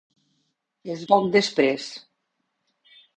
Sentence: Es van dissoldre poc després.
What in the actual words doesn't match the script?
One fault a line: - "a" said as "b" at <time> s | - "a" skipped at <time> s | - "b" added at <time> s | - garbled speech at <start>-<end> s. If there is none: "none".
- "van dissoldre" skipped at 1.0 s